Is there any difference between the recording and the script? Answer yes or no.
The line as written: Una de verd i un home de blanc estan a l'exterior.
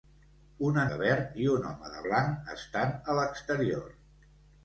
no